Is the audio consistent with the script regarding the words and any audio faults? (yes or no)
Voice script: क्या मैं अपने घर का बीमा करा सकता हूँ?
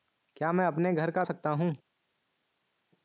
no